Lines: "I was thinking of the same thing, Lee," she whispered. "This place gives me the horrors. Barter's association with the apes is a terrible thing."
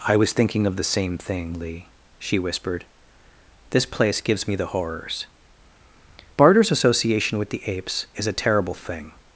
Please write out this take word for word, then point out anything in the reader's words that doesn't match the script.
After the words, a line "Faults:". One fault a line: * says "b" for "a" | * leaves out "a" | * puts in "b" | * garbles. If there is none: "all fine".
"I was thinking of the same thing, Lee," she whispered. "This place gives me the horrors. Barter's association with the apes is a terrible thing."
Faults:
all fine